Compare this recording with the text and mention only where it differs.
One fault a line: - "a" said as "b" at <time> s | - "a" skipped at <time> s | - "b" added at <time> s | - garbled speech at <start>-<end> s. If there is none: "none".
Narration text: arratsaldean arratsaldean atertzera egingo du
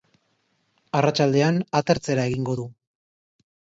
- "arratsaldean" skipped at 1.6 s